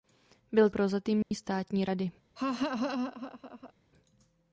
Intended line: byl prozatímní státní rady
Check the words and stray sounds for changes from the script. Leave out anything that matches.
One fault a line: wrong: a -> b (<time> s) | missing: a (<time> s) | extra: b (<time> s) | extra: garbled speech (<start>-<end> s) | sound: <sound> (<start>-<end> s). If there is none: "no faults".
sound: dropout (1.2-1.3 s)
sound: laugh (2.4-3.7 s)